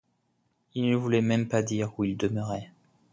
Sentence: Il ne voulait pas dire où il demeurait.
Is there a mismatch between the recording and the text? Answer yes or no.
yes